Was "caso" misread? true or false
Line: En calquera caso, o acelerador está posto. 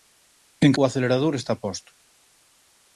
true